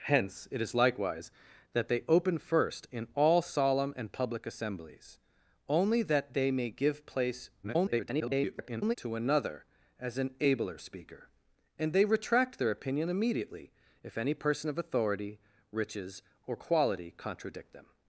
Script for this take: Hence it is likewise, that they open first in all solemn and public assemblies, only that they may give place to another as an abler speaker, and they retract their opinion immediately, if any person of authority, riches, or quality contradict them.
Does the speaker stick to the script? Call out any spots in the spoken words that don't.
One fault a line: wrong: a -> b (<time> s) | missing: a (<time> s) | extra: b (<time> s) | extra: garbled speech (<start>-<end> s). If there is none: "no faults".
extra: garbled speech (7.6-9.0 s)